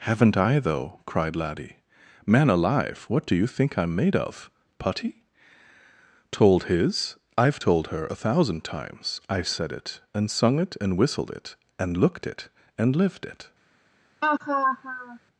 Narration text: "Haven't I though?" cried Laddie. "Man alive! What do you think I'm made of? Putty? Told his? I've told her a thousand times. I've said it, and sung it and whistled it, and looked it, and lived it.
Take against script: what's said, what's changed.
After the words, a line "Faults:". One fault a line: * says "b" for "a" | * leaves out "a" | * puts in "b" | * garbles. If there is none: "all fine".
"Haven't I though?" cried Laddie. "Man alive! What do you think I'm made of? Putty? Told his? I've told her a thousand times. I've said it, and sung it and whistled it, and looked it, and lived it.
Faults:
all fine